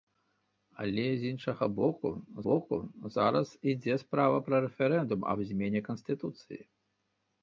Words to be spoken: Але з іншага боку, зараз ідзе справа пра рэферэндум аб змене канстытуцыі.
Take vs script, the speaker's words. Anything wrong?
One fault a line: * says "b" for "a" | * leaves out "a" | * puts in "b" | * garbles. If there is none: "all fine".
* puts in "боку"